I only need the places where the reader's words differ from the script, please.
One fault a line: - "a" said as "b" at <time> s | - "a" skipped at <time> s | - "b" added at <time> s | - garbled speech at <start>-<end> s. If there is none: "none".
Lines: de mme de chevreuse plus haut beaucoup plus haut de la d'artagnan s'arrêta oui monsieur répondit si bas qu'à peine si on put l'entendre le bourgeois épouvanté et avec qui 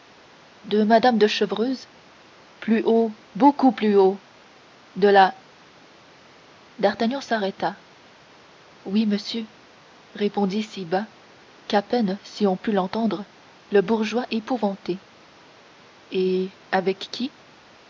none